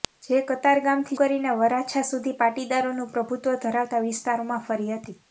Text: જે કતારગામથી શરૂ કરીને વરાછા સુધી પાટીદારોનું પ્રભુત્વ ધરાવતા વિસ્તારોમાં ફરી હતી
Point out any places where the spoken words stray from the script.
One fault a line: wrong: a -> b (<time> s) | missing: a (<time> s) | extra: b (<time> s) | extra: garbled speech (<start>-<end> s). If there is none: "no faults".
missing: શરૂ (1.2 s)